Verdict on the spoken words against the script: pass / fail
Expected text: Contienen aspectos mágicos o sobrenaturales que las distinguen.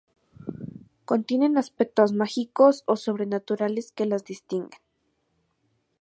pass